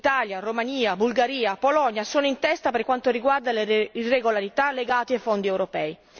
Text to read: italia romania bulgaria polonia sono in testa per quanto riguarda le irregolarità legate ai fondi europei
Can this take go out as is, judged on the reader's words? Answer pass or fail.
pass